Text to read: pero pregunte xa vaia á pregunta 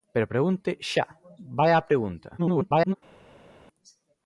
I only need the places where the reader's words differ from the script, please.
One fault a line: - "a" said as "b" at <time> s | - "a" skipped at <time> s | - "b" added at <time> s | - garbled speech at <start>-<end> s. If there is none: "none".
- garbled speech at 2.4-3.0 s